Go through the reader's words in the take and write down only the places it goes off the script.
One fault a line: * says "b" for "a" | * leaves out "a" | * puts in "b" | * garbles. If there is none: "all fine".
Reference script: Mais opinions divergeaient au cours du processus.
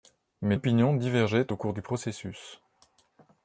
all fine